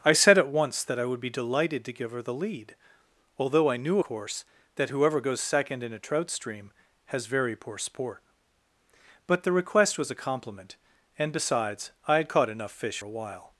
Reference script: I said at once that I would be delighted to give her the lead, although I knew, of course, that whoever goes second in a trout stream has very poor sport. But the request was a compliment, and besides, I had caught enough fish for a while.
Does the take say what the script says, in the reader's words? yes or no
no